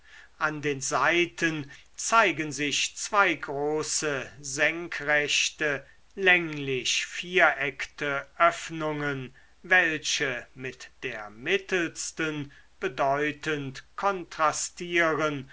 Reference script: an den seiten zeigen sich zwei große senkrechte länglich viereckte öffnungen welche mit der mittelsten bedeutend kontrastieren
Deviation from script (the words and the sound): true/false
false